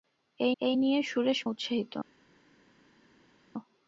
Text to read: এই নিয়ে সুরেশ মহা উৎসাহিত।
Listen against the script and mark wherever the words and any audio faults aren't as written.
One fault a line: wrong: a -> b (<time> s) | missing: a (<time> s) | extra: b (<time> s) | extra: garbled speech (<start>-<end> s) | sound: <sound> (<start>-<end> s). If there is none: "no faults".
extra: এই (0.6 s)
missing: মহা (1.4 s)